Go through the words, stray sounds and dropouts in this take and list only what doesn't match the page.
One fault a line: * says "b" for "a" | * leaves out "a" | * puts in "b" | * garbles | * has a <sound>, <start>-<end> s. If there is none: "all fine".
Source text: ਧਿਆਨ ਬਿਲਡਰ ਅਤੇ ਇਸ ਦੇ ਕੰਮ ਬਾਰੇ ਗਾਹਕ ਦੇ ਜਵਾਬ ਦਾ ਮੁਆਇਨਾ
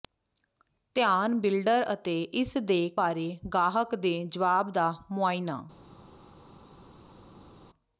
* leaves out "ਕੰਮ"